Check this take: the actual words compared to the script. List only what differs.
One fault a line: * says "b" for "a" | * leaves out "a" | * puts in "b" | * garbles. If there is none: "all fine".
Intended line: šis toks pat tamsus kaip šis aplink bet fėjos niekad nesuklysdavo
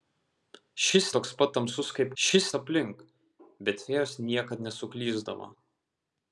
all fine